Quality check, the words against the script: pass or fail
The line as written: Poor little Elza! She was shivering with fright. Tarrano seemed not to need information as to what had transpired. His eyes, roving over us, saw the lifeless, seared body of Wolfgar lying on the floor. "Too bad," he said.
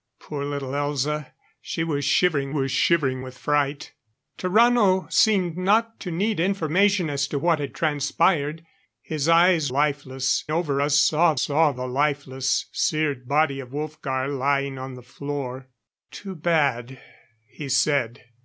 fail